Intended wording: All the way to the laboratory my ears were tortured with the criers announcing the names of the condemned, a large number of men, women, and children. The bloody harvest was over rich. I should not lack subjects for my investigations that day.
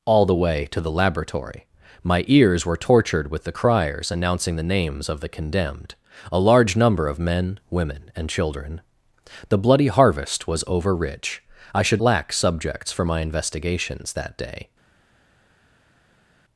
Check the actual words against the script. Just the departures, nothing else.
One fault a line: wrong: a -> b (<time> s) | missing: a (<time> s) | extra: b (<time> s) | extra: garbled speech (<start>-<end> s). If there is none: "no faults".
missing: not (12.0 s)